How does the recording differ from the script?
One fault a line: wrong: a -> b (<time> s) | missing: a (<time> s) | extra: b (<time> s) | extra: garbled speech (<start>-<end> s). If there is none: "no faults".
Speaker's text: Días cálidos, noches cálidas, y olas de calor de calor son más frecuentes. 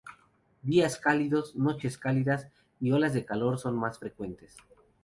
missing: de calor (3.6 s)